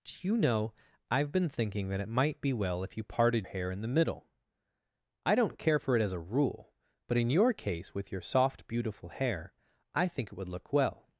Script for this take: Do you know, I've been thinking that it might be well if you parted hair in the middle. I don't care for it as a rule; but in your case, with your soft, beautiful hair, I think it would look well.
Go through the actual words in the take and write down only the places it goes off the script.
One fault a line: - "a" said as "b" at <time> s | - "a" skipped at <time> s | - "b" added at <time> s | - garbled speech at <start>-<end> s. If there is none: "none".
none